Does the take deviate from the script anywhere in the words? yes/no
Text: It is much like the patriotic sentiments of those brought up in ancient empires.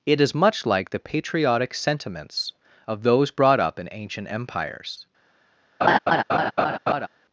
no